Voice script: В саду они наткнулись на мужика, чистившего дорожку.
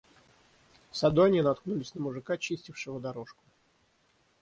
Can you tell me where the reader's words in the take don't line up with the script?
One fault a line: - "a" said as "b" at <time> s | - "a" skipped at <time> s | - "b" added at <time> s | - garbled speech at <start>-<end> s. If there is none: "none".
none